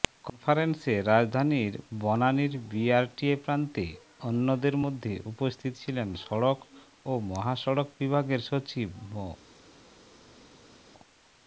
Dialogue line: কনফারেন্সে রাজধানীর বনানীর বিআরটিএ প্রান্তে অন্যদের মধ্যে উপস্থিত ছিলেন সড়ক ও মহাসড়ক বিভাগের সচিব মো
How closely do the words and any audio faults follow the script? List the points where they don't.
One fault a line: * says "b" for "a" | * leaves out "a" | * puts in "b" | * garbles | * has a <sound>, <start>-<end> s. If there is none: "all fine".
all fine